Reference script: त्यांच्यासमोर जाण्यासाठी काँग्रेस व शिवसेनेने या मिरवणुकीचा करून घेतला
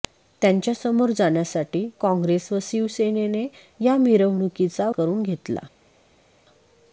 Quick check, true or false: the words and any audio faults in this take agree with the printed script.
true